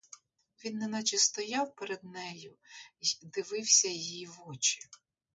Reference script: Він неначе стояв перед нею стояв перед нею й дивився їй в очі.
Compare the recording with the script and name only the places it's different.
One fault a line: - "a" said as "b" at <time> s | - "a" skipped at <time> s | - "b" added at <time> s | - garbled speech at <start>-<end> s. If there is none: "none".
- "стояв перед нею" skipped at 2.6 s